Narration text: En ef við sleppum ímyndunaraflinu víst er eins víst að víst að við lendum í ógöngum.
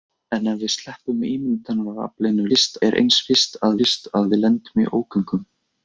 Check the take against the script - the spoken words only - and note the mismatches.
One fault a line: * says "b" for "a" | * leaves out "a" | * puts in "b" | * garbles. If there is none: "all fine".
all fine